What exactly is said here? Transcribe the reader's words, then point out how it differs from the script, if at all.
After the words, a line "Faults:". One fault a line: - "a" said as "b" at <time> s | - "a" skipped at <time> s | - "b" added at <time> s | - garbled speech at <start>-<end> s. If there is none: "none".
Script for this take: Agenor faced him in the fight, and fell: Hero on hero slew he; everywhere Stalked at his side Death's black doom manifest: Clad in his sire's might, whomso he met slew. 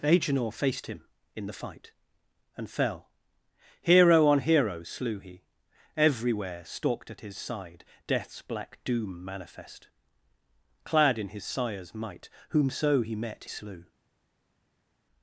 Agenor faced him in the fight, and fell: Hero on hero slew he; everywhere Stalked at his side Death's black doom manifest: Clad in his sire's might, whomso he met slew.
Faults:
none